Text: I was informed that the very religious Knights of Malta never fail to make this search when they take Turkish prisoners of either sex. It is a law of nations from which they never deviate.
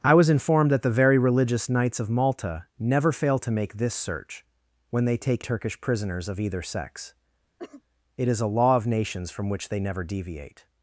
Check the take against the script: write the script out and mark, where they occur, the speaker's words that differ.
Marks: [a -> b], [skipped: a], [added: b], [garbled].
I was informed that the very religious Knights of Malta never fail to make this search when they take Turkish prisoners of either sex. It is a law of nations from which they never deviate.